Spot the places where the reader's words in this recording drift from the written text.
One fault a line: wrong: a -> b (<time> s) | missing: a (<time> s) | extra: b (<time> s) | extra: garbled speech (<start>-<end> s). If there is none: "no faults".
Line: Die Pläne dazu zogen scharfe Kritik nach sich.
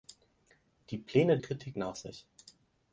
missing: dazu zogen scharfe (1.4 s)